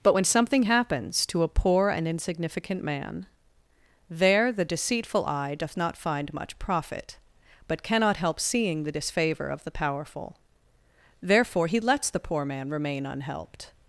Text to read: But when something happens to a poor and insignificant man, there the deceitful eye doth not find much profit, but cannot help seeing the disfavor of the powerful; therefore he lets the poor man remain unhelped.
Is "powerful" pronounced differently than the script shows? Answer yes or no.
no